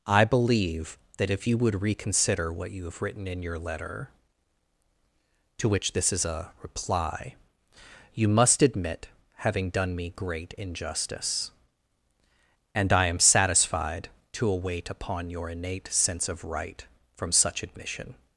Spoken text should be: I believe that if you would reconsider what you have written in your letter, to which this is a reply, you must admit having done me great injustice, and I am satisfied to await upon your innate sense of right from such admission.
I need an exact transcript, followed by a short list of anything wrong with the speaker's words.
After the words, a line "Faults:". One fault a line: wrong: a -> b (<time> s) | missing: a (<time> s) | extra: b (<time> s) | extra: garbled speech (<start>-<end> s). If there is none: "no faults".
I believe that if you would reconsider what you have written in your letter, to which this is a reply, you must admit having done me great injustice, and I am satisfied to await upon your innate sense of right from such admission.
Faults:
no faults